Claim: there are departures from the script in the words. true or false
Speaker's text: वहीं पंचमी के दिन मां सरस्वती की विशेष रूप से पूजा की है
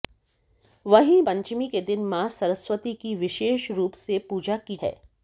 false